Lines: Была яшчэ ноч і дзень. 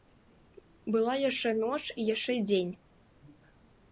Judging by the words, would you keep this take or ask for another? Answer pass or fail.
fail